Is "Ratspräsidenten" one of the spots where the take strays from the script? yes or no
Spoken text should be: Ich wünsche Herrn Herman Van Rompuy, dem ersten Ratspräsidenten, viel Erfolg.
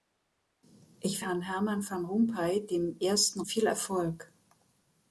yes